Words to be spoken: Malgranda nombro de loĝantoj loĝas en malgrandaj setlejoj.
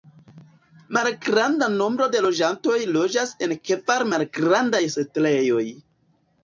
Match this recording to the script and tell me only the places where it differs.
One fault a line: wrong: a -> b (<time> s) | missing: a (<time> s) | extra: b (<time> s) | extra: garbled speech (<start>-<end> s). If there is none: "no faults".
extra: kvar (3.7 s)